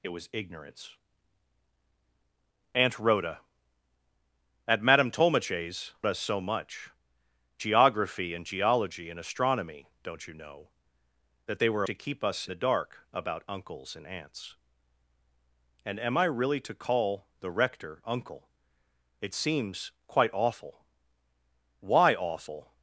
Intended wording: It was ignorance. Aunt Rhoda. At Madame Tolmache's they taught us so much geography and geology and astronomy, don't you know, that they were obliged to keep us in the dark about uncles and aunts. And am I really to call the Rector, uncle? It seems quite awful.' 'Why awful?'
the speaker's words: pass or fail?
fail